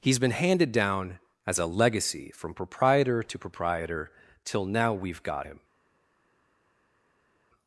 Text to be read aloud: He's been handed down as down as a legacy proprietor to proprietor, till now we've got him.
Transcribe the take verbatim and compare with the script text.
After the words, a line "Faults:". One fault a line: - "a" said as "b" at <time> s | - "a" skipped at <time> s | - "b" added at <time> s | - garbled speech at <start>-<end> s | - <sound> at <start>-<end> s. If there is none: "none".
He's been handed down as a legacy from proprietor to proprietor, till now we've got him.
Faults:
- "down as" skipped at 1.6 s
- "from" added at 2.3 s